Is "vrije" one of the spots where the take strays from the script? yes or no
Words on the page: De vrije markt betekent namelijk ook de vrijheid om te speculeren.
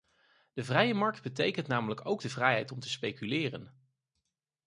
no